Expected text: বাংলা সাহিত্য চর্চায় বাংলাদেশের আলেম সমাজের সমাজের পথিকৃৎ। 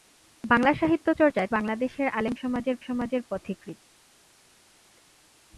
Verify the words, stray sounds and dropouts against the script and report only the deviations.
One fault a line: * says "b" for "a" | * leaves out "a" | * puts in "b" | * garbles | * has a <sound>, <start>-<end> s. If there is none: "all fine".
all fine